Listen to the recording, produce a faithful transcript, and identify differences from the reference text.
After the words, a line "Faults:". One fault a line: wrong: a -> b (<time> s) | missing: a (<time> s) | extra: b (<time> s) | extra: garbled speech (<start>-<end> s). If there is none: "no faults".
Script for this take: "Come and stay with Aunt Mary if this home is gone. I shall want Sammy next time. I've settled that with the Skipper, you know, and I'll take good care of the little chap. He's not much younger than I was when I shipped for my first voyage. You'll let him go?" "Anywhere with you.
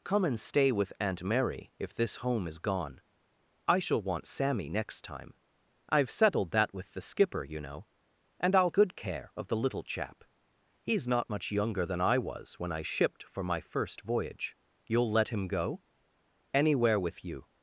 "Come and stay with Aunt Mary if this home is gone. I shall want Sammy next time. I've settled that with the Skipper, you know, and I'll good care of the little chap. He's not much younger than I was when I shipped for my first voyage. You'll let him go?" "Anywhere with you.
Faults:
missing: take (8.7 s)